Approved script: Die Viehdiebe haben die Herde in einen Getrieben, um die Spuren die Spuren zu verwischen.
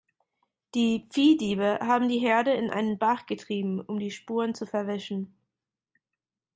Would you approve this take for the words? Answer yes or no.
no